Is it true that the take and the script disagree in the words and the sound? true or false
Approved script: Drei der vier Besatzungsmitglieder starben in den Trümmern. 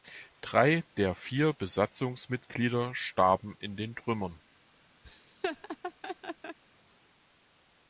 true